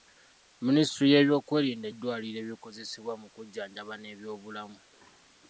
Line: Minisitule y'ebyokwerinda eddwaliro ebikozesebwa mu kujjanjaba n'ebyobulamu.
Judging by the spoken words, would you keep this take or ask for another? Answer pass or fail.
pass